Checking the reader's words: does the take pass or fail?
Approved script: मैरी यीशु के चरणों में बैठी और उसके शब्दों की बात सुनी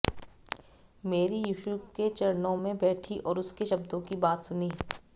pass